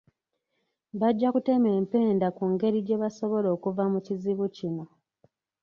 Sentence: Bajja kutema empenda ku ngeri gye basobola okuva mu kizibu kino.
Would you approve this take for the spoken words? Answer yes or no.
yes